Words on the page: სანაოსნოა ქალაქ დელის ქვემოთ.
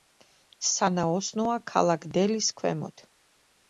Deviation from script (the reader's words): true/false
false